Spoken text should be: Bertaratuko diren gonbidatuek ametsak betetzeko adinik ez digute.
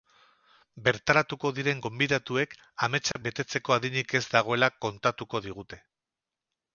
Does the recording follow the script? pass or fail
fail